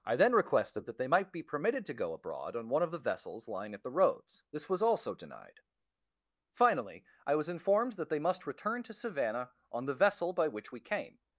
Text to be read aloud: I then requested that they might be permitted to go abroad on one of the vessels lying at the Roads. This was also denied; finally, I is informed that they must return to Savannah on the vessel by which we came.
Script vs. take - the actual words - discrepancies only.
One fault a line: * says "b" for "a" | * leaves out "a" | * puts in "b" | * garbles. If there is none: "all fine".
* says "was" for "is"